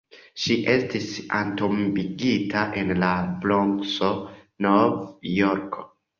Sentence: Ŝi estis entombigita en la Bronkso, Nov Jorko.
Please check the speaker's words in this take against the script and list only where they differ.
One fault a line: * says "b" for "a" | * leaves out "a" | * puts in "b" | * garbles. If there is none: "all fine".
all fine